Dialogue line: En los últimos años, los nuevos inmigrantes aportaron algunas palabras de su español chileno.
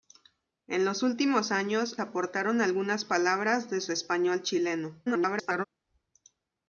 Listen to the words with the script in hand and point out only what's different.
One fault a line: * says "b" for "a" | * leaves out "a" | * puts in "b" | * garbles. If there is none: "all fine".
* leaves out "los nuevos inmigrantes"
* garbles